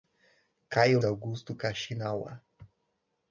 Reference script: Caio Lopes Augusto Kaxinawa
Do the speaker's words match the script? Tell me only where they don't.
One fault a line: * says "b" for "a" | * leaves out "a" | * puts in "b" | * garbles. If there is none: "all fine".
* leaves out "Lopes"